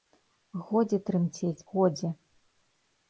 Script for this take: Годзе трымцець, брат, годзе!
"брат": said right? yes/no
no